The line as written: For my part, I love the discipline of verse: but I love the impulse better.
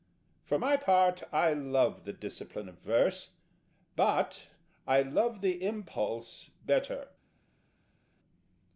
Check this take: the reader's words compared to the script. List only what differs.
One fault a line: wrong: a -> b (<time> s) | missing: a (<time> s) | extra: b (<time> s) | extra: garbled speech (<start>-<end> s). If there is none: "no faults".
no faults